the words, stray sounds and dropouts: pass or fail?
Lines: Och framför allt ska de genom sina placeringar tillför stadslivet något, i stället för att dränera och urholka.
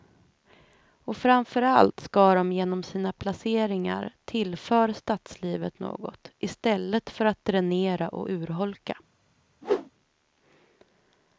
fail